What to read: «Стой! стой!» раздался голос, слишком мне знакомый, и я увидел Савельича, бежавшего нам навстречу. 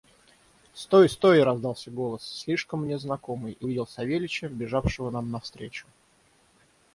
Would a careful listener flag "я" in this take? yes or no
yes